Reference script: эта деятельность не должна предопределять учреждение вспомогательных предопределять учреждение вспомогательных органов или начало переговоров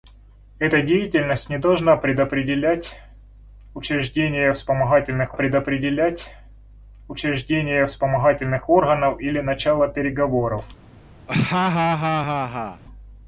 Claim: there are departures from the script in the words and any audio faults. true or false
true